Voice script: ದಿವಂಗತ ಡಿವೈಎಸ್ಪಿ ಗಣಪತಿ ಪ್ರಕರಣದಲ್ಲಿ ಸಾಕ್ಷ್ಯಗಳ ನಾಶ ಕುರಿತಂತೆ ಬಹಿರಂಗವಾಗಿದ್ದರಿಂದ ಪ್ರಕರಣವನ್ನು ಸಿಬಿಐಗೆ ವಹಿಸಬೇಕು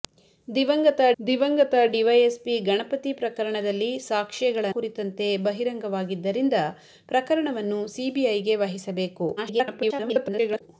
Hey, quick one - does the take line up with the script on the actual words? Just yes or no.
no